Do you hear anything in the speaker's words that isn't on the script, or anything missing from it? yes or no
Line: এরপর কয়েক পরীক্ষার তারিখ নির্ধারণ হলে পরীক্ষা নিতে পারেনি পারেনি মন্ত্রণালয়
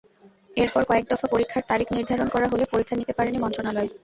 yes